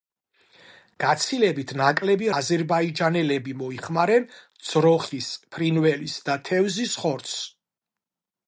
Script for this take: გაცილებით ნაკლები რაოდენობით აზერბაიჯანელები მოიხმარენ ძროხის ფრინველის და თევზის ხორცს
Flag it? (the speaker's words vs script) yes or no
yes